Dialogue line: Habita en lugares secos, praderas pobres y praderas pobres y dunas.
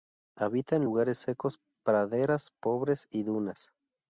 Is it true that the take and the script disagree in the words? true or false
true